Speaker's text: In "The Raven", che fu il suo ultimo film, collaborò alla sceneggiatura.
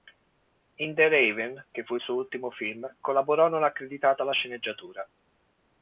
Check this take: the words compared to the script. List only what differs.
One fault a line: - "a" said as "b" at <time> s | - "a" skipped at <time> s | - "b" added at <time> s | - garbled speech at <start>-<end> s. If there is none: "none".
- "non accreditato" added at 3.5 s